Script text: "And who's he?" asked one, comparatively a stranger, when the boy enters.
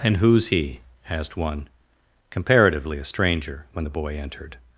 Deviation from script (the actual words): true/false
true